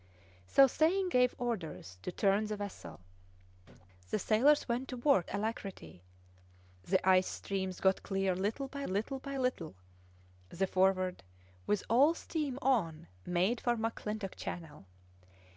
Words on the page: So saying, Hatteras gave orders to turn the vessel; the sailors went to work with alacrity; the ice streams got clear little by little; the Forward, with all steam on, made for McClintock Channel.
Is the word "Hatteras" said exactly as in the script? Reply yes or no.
no